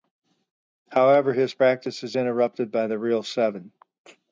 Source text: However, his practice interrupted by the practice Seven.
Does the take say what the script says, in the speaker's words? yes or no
no